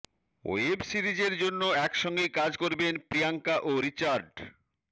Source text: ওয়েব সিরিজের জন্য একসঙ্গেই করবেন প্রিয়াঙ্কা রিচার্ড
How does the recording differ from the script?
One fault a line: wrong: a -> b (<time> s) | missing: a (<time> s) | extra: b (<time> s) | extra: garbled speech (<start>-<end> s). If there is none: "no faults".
extra: কাজ (2.4 s)
extra: ও (3.6 s)